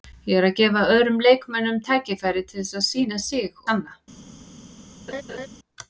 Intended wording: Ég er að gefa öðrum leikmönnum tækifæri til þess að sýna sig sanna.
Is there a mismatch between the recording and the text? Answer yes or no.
no